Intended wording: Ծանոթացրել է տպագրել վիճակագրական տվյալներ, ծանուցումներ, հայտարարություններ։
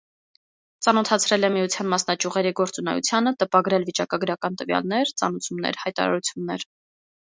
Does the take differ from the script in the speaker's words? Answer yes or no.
yes